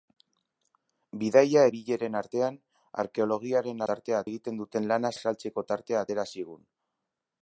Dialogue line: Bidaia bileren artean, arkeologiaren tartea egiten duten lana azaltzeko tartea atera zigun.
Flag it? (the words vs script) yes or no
no